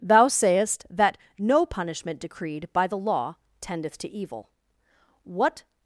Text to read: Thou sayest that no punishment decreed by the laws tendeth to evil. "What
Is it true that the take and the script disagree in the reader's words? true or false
true